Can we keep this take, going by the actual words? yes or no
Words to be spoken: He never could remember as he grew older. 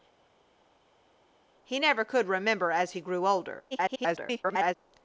no